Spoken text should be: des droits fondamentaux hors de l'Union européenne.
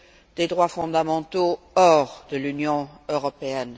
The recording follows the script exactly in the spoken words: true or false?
true